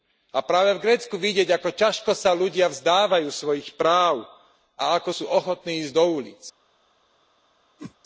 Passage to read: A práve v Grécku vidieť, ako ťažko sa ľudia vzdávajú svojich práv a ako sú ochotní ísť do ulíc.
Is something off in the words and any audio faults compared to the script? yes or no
yes